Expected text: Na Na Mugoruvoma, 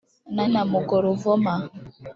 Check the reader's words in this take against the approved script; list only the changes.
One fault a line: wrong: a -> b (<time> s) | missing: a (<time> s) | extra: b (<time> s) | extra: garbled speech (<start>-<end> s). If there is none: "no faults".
no faults